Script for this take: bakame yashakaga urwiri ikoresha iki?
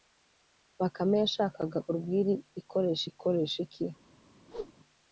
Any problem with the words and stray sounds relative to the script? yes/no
yes